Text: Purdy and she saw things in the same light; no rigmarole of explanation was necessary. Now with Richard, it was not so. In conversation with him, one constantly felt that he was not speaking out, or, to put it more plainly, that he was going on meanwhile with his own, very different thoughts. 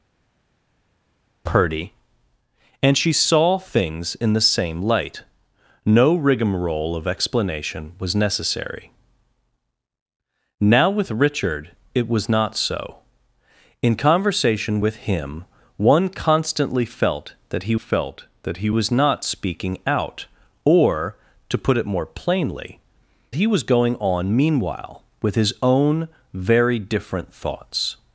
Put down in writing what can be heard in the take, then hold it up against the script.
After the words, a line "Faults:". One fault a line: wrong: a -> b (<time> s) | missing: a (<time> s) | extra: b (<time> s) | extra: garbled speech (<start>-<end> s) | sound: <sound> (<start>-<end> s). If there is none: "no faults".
Purdy and she saw things in the same light; no rigmarole of explanation was necessary. Now with Richard, it was not so. In conversation with him, one constantly felt that he felt that he was not speaking out, or, to put it more plainly, he was going on meanwhile with his own, very different thoughts.
Faults:
extra: felt that he (17.7 s)
missing: that (22.8 s)